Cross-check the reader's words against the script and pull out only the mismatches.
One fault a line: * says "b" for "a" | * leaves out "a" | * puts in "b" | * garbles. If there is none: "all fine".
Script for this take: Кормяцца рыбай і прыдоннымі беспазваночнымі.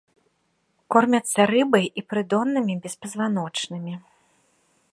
all fine